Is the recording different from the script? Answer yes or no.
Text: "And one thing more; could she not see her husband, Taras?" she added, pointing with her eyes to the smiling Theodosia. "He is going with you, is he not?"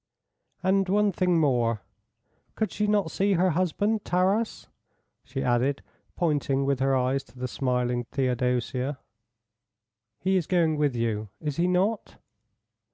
no